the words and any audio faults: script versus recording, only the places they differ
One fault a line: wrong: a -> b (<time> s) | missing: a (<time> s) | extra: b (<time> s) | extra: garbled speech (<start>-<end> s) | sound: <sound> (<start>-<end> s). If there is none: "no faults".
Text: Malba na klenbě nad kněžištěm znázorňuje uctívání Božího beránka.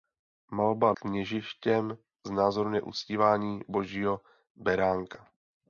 missing: na klenbě nad (0.9 s)